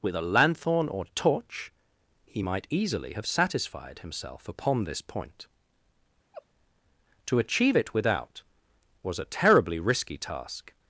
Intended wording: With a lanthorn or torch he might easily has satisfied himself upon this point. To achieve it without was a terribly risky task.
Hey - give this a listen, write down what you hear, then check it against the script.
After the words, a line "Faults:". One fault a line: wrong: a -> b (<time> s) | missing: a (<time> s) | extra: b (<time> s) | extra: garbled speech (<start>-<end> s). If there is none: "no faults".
With a lanthorn or torch he might easily have satisfied himself upon this point. To achieve it without was a terribly risky task.
Faults:
wrong: has -> have (3.1 s)